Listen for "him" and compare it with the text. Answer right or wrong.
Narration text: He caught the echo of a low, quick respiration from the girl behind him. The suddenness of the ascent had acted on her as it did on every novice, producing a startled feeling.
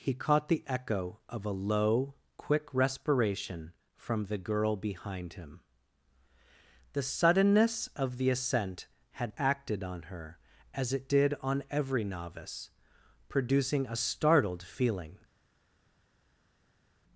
right